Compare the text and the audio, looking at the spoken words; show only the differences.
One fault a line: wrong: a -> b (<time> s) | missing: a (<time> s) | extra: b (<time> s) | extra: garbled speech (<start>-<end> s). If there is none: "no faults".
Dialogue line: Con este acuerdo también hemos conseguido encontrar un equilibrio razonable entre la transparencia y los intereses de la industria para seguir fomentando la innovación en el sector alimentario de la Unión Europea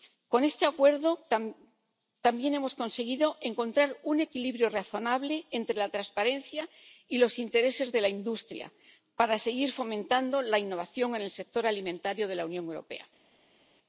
no faults